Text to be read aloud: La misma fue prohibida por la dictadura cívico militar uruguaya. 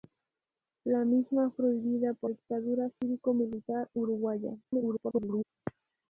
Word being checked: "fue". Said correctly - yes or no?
no